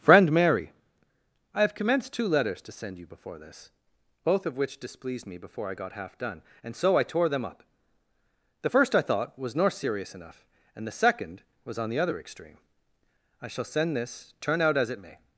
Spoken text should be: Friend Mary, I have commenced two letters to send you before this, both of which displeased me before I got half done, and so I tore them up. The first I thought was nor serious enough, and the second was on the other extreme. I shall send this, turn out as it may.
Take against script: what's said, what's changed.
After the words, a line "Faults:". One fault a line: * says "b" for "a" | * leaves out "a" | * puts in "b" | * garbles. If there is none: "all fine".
Friend Mary, I have commenced two letters to send you before this, both of which displeased me before I got half done, and so I tore them up. The first I thought was nor serious enough, and the second was on the other extreme. I shall send this, turn out as it may.
Faults:
all fine